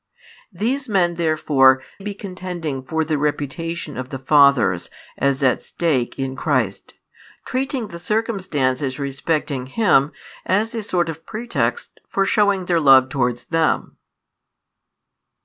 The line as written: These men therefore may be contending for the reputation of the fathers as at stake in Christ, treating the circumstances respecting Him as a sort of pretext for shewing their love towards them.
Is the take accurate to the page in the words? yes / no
no